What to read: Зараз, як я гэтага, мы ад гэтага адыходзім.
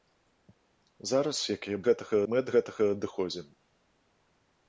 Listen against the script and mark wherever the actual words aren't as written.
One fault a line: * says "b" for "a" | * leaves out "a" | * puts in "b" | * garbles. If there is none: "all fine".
all fine